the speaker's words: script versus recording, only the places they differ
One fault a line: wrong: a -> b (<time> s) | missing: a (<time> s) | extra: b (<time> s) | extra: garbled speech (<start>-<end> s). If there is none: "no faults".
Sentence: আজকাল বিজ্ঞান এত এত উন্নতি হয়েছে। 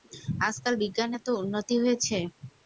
missing: এত (1.3 s)